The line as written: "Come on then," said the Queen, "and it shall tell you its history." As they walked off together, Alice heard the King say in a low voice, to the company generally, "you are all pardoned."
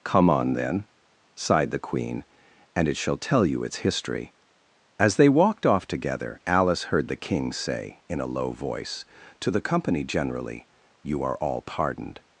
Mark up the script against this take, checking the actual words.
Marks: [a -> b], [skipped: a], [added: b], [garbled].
"Come on then," [said -> sighed] the Queen, "and it shall tell you its history." As they walked off together, Alice heard the King say in a low voice, to the company generally, "you are all pardoned."